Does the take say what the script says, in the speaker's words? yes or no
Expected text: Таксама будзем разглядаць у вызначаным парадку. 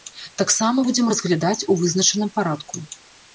yes